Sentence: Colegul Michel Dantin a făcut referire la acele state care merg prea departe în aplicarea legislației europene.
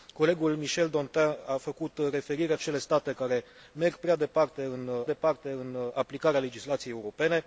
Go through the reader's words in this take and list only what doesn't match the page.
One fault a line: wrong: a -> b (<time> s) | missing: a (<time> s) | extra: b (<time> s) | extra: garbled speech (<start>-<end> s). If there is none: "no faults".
missing: la (2.5 s)
extra: departe în (5.0 s)